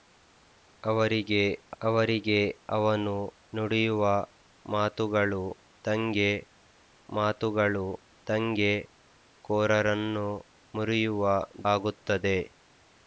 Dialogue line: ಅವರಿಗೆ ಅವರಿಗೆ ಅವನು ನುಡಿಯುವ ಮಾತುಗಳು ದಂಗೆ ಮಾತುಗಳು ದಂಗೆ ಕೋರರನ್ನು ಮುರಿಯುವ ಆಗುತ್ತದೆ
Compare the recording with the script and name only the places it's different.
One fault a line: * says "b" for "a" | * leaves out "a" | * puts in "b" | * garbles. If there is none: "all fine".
all fine